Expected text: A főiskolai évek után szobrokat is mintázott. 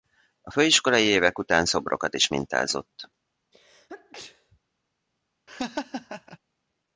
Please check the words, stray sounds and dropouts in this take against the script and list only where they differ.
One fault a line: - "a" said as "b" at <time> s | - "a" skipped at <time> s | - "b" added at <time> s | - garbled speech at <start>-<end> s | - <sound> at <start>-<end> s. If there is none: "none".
- sneeze at 3.5-4.6 s
- laugh at 5.5-6.4 s